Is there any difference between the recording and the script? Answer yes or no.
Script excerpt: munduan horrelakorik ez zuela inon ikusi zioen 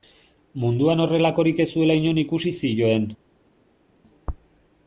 no